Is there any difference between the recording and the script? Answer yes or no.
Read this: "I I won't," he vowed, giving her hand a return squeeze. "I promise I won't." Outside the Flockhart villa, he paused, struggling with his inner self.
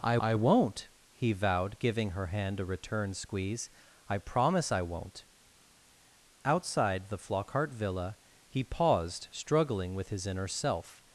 no